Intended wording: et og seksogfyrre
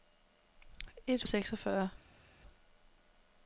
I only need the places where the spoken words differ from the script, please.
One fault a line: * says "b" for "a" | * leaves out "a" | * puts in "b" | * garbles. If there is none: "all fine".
all fine